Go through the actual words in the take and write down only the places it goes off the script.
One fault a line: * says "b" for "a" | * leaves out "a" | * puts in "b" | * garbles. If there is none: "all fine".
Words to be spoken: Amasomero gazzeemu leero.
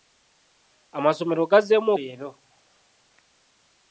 all fine